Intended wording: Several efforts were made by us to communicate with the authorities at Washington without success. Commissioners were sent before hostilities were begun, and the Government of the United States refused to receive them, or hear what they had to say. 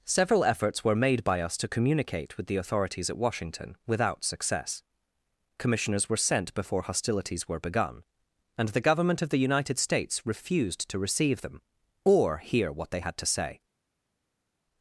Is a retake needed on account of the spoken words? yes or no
no